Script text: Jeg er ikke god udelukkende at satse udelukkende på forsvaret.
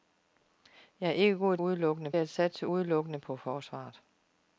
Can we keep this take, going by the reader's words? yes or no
yes